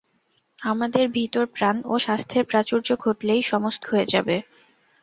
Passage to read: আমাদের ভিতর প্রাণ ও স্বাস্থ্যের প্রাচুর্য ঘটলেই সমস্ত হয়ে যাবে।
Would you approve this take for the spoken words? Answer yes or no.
yes